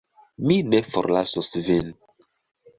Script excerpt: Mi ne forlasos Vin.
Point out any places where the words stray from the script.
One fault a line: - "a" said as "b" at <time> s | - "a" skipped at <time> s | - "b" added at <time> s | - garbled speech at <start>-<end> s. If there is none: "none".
none